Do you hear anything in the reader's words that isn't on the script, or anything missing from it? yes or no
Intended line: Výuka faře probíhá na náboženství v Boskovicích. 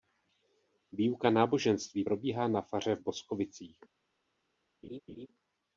yes